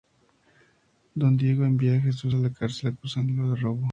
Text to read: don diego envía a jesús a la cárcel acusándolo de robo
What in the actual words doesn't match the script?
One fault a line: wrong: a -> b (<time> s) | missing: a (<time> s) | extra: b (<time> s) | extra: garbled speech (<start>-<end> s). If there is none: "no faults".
no faults